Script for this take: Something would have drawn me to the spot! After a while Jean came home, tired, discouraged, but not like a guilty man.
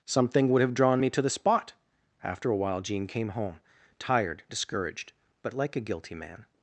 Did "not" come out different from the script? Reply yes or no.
yes